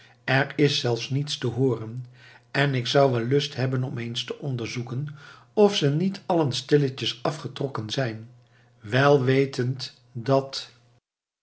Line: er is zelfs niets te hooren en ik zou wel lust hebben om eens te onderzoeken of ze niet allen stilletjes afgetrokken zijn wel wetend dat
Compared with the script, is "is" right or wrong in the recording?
right